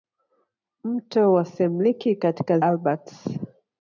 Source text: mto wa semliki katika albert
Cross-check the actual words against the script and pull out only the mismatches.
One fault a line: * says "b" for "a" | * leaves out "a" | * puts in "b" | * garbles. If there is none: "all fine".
all fine